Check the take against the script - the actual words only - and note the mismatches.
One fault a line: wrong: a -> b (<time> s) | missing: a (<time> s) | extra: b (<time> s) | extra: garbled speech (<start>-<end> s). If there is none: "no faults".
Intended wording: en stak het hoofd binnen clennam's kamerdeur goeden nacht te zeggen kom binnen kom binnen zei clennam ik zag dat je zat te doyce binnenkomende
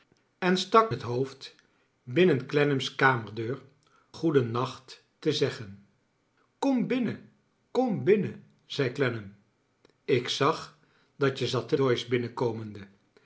no faults